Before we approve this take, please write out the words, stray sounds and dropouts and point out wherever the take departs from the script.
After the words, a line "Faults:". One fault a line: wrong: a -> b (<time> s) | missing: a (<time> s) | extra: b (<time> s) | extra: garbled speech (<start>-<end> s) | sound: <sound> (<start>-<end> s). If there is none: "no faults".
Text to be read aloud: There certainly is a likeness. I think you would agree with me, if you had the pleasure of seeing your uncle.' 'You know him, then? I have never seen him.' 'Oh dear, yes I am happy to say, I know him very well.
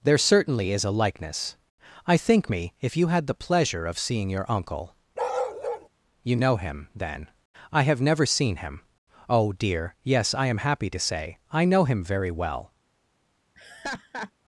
There certainly is a likeness. I think me, if you had the pleasure of seeing your uncle.' 'You know him, then? I have never seen him.' 'Oh dear, yes I am happy to say, I know him very well.
Faults:
missing: you would agree with (2.5 s)
sound: bark (5.2-5.9 s)
sound: laugh (13.5-14.3 s)